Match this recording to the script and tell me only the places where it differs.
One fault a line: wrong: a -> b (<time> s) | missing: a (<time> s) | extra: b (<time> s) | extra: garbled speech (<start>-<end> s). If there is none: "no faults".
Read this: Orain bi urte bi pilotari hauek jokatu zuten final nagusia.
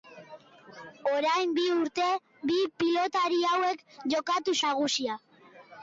missing: zuten final (4.6 s)